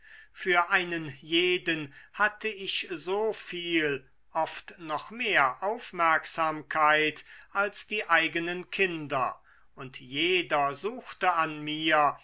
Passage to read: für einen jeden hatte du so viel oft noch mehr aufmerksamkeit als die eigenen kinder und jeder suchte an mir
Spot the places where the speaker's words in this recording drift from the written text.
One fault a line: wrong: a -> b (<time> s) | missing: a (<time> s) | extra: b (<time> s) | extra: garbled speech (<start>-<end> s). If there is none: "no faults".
wrong: du -> ich (2.5 s)